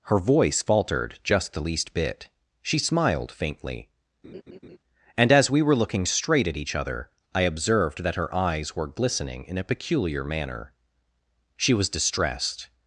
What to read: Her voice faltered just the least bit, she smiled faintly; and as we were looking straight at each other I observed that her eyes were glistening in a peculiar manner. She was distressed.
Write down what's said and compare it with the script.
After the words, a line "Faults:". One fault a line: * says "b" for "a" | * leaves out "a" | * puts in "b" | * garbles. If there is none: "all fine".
Her voice faltered just the least bit, she smiled faintly; and as we were looking straight at each other I observed that her eyes were glistening in a peculiar manner. She was distressed.
Faults:
all fine